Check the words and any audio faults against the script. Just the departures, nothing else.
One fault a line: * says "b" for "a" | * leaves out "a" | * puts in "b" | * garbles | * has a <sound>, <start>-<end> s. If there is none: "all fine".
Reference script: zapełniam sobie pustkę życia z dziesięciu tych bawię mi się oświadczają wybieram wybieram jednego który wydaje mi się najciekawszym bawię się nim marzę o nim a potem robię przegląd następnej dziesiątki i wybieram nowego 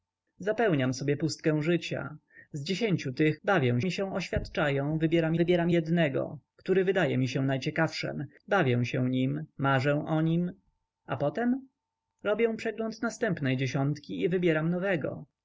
all fine